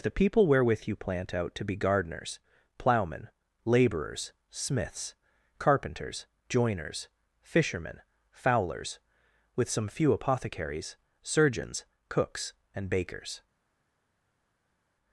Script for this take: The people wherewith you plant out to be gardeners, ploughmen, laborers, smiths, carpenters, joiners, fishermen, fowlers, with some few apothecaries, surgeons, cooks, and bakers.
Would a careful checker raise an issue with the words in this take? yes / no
no